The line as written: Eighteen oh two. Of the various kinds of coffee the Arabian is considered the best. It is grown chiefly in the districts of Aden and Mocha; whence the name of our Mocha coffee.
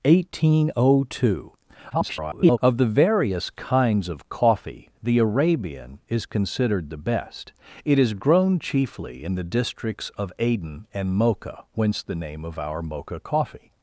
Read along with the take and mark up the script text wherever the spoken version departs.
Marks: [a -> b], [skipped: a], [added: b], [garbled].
Eighteen oh two. [garbled] Of the various kinds of coffee the Arabian is considered the best. It is grown chiefly in the districts of Aden and Mocha; whence the name of our Mocha coffee.